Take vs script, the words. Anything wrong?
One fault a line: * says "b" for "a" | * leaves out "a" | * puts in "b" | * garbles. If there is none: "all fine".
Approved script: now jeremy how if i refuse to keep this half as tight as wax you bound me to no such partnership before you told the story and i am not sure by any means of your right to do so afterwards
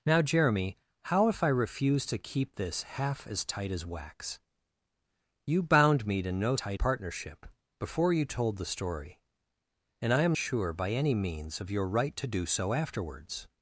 * says "tight" for "such"
* leaves out "not"